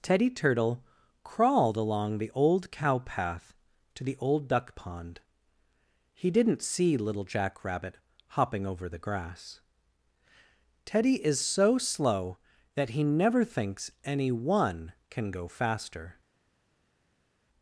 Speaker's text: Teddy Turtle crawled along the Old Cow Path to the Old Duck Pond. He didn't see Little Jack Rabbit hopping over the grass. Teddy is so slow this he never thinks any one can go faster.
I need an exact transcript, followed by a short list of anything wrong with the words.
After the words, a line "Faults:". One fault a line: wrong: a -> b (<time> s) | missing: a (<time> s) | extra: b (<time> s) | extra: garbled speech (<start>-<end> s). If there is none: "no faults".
Teddy Turtle crawled along the Old Cow Path to the Old Duck Pond. He didn't see Little Jack Rabbit hopping over the grass. Teddy is so slow that he never thinks any one can go faster.
Faults:
wrong: this -> that (12.8 s)